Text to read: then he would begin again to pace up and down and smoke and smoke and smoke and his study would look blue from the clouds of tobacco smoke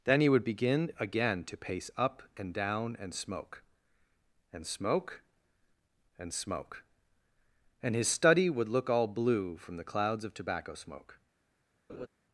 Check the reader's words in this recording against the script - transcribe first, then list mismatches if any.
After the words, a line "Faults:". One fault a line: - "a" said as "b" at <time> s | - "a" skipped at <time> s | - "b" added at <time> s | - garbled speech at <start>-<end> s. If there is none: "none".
then he would begin again to pace up and down and smoke and smoke and smoke and his study would look all blue from the clouds of tobacco smoke
Faults:
- "all" added at 8.9 s